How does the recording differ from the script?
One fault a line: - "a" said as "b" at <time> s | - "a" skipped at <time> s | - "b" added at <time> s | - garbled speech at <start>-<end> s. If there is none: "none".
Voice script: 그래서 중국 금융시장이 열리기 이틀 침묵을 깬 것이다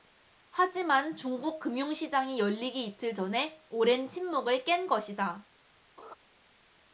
- "그래서" said as "하지만" at 0.5 s
- "전에 오랜" added at 3.1 s